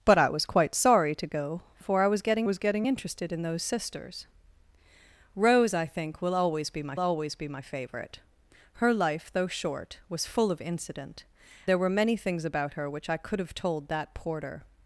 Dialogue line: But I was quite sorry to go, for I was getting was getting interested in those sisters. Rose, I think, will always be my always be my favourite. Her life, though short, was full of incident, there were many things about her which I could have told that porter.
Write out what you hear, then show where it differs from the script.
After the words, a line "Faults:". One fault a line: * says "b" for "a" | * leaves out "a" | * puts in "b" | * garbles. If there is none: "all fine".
But I was quite sorry to go, for I was getting was getting interested in those sisters. Rose, I think, will always be my always be my favourite. Her life, though short, was full of incident, there were many things about her which I could have told that porter.
Faults:
all fine